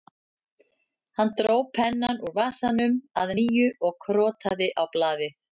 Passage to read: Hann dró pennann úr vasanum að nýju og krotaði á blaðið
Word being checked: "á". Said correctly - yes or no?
yes